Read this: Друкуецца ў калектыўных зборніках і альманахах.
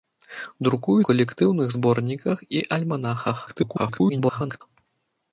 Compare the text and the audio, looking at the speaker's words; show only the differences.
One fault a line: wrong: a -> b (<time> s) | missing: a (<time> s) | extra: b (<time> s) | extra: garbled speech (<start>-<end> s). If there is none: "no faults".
missing: ў (1.0 s)
extra: garbled speech (3.5-4.6 s)